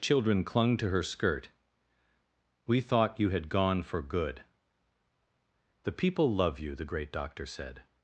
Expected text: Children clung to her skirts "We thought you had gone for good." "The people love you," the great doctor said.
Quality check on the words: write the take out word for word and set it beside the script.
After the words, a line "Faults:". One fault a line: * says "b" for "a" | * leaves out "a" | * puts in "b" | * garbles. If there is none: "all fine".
Children clung to her skirt "We thought you had gone for good." "The people love you," the great doctor said.
Faults:
* says "skirt" for "skirts"